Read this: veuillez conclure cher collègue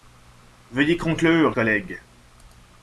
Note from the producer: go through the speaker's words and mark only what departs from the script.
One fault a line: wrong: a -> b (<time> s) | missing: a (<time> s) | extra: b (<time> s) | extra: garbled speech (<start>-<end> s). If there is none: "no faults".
missing: cher (1.6 s)